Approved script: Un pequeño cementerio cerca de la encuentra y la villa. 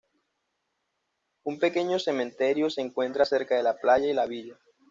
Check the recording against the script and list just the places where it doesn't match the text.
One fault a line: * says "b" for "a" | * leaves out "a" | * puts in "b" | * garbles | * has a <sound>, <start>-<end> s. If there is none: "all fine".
* puts in "se encuentra"
* says "playa" for "encuentra"